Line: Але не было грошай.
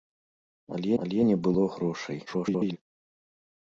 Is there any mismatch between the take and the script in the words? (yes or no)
yes